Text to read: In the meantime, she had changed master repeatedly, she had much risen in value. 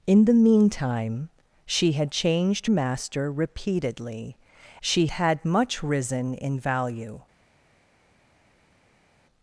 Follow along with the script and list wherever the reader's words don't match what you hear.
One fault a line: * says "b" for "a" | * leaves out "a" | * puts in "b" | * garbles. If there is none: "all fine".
all fine